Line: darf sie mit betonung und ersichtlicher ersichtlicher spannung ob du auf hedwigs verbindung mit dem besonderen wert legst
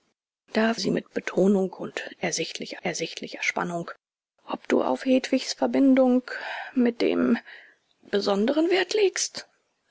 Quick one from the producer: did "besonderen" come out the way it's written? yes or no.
yes